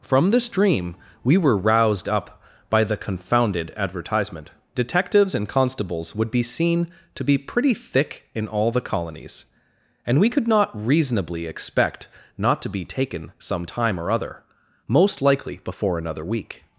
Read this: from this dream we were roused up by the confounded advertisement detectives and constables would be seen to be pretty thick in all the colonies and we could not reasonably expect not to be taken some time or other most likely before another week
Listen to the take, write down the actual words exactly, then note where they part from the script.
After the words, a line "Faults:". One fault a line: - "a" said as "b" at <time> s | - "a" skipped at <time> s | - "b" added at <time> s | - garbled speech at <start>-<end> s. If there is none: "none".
from this dream we were roused up by the confounded advertisement detectives and constables would be seen to be pretty thick in all the colonies and we could not reasonably expect not to be taken some time or other most likely before another week
Faults:
none